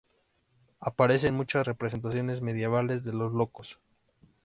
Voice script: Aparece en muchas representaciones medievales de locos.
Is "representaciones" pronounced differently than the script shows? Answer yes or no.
no